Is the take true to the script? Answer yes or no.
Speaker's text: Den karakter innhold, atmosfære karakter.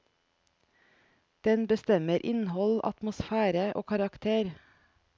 no